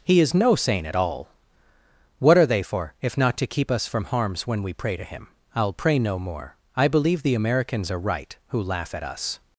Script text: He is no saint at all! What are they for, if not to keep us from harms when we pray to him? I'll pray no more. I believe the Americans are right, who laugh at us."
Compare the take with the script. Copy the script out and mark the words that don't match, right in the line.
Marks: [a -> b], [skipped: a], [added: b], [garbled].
He is no saint at all! What are they for, if not to keep us from harms when we pray to him? I'll pray no more. I believe the Americans are right, who laugh at us."